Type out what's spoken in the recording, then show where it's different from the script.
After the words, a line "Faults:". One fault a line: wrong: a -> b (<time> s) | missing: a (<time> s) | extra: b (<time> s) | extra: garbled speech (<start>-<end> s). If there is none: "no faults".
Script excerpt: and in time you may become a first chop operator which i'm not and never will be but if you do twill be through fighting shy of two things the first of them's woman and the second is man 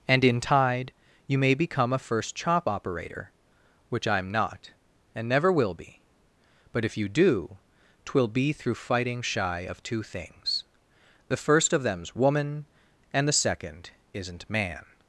and in tide you may become a first chop operator which i'm not and never will be but if you do twill be through fighting shy of two things the first of them's woman and the second isn't man
Faults:
wrong: time -> tide (0.4 s)
wrong: is -> isn't (14.1 s)